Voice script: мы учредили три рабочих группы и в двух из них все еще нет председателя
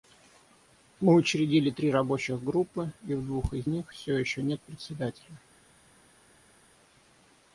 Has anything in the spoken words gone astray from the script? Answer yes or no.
no